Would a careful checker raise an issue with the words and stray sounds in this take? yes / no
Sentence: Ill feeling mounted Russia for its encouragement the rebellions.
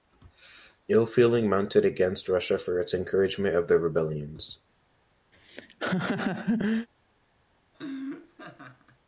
yes